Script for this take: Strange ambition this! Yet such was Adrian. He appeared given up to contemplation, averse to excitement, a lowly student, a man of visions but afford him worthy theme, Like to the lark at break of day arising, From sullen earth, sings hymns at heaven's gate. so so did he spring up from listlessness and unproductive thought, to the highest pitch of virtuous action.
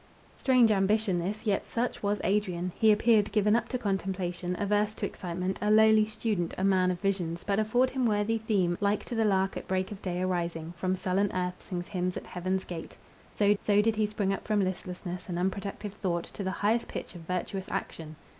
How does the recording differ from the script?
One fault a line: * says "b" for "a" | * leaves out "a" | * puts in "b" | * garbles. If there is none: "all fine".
all fine